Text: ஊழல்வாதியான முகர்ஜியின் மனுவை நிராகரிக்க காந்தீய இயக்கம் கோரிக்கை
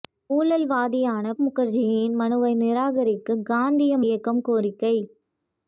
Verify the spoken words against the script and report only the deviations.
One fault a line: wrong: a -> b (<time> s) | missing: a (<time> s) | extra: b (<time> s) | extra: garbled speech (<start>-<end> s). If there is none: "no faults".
no faults